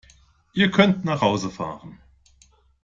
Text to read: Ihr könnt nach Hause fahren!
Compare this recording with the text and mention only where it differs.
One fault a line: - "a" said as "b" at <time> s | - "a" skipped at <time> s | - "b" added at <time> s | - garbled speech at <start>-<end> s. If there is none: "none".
none